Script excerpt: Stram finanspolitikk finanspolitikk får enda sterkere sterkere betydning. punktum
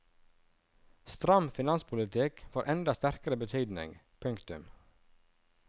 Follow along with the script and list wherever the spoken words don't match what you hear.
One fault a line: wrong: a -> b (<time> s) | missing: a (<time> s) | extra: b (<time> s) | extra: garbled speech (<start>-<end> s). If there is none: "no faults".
missing: finanspolitikk (2.5 s)
missing: sterkere (3.4 s)